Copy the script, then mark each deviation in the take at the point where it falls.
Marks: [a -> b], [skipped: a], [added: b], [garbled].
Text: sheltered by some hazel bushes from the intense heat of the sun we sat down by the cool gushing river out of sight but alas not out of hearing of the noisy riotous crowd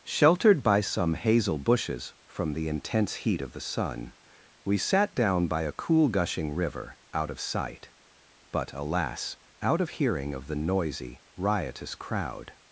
sheltered by some hazel bushes from the intense heat of the sun we sat down by [the -> a] cool gushing river out of sight but alas [skipped: not] out of hearing of the noisy riotous crowd